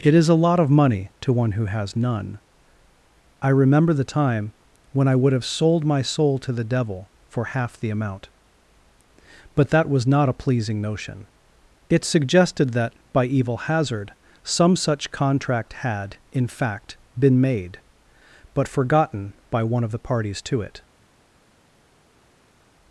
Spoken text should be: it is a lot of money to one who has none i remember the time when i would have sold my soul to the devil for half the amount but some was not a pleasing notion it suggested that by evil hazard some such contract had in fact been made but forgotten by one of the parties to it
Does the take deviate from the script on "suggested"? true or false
false